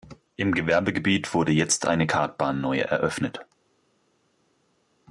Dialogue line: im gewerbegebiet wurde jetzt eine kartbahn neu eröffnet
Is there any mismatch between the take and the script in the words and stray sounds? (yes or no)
no